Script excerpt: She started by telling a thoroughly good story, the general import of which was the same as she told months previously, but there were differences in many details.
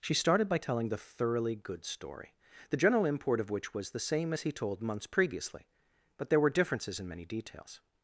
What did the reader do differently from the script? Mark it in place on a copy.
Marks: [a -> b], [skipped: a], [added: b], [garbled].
She started by telling [a -> the] thoroughly good story, the general import of which was the same as [she -> he] told months previously, but there were differences in many details.